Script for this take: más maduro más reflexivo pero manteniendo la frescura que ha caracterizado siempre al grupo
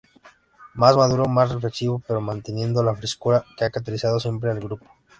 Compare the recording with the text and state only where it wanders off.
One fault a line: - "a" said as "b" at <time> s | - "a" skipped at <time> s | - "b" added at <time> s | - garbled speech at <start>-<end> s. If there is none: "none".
none